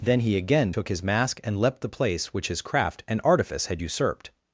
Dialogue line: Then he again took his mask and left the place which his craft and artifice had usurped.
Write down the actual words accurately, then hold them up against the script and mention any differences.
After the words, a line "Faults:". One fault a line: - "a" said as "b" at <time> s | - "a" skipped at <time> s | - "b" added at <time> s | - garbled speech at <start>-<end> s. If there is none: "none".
Then he again took his mask and leapt the place which his craft and artifice had usurped.
Faults:
- "left" said as "leapt" at 1.6 s